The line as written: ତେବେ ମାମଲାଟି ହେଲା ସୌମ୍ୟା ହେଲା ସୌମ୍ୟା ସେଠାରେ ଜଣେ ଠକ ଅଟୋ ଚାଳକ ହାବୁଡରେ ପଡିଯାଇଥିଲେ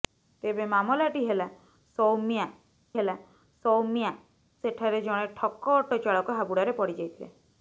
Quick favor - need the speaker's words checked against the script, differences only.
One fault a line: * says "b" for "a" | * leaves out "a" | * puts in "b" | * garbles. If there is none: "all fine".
all fine